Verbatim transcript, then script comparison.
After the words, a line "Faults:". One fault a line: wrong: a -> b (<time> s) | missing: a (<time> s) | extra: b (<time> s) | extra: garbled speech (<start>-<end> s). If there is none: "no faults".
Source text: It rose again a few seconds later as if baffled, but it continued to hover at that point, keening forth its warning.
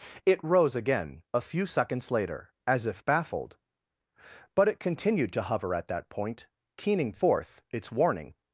It rose again a few seconds later as if baffled, but it continued to hover at that point, keening forth its warning.
Faults:
no faults